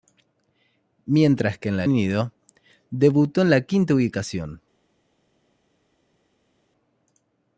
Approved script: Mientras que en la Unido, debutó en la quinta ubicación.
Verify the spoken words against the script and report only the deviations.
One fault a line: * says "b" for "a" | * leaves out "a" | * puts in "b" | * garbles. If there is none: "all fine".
all fine